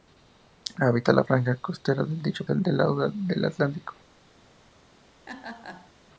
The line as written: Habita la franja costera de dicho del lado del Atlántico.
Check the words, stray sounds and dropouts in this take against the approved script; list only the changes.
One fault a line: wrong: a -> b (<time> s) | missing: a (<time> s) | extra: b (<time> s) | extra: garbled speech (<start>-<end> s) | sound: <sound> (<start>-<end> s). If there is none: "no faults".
sound: laugh (5.3-5.9 s)